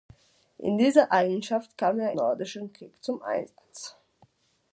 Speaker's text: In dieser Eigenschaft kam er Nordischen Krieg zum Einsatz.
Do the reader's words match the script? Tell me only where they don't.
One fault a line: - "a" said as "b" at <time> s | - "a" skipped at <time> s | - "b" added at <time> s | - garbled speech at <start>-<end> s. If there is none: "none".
none